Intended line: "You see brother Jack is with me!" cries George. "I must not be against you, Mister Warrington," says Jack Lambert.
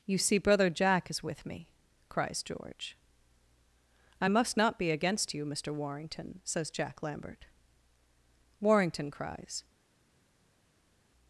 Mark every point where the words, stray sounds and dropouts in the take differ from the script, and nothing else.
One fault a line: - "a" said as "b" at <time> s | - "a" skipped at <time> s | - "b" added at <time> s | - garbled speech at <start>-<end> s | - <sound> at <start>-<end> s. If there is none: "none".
- "Warrington cries" added at 8.6 s